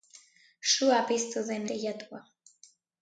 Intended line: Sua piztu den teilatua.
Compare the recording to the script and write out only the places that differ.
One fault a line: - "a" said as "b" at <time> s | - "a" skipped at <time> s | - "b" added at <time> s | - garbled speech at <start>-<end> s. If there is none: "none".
none